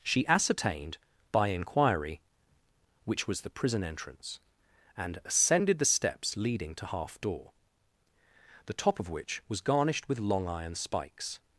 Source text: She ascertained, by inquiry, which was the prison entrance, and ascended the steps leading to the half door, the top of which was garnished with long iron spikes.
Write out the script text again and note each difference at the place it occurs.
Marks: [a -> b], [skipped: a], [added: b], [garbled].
She ascertained, by inquiry, which was the prison entrance, and ascended the steps leading to [skipped: the] half door, the top of which was garnished with long iron spikes.